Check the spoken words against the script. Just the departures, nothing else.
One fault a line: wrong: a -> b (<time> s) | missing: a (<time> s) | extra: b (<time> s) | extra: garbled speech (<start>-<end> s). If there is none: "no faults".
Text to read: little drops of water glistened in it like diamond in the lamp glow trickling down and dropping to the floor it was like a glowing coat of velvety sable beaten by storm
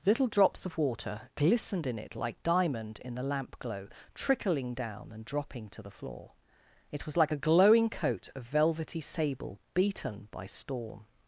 no faults